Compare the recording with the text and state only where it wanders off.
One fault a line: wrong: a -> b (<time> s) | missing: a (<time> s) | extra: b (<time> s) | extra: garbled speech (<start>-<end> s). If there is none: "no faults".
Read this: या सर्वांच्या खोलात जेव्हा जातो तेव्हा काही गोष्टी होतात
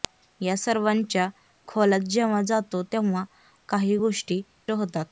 no faults